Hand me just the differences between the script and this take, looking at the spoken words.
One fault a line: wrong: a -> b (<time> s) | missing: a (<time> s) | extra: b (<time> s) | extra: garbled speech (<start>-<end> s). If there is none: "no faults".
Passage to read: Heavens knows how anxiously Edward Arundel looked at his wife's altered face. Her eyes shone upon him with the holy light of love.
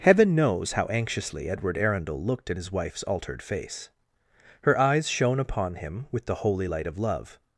wrong: Heavens -> Heaven (0.0 s)